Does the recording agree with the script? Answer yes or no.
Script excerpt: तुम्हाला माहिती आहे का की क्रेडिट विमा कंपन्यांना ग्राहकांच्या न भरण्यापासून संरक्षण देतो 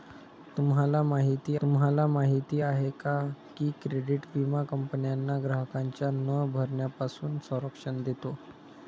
no